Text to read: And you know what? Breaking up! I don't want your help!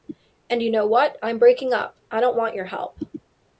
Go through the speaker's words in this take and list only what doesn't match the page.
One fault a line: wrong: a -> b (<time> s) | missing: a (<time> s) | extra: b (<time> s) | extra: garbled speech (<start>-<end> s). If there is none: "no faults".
extra: I'm (1.2 s)